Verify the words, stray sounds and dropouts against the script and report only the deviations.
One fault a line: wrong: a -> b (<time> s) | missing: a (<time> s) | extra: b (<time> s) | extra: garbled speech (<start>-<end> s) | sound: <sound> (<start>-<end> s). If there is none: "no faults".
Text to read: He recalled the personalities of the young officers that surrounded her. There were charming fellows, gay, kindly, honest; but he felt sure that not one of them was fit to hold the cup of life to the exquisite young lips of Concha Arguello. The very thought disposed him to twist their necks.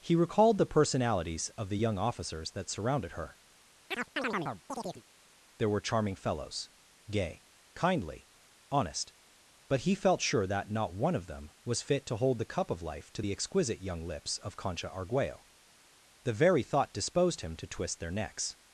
sound: chirp (3.9-5.0 s)